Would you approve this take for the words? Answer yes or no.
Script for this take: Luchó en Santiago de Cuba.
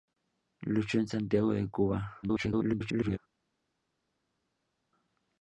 no